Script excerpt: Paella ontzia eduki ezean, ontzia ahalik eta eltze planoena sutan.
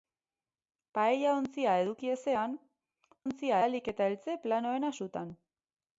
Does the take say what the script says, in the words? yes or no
yes